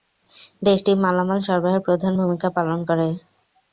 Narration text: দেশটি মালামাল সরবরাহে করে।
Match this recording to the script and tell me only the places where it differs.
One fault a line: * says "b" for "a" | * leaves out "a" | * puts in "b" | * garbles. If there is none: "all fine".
* puts in "প্রধান ভূমিকা পালন"